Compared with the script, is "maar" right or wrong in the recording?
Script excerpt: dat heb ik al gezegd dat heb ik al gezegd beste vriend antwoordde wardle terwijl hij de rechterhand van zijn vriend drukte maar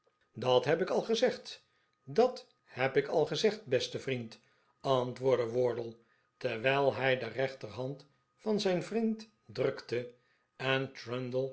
wrong